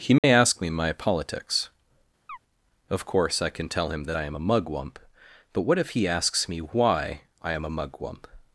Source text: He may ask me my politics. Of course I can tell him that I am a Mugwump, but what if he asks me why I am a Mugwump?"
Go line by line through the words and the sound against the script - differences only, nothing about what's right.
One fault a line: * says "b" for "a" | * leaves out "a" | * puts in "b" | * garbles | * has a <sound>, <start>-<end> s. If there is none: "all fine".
* has a dropout, 0.2-0.2 s
* has a chirp, 2.3-2.4 s